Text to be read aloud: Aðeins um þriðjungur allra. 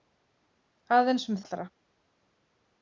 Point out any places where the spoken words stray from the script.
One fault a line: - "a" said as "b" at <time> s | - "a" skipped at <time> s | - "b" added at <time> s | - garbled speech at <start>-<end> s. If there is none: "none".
- "þriðjungur" skipped at 1.4 s